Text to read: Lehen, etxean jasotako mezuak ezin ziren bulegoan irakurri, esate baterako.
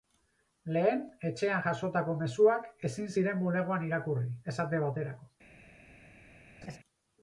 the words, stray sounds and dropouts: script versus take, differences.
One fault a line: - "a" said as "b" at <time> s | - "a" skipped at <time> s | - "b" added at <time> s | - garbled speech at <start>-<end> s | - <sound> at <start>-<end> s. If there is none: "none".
- laugh at 6.6-6.8 s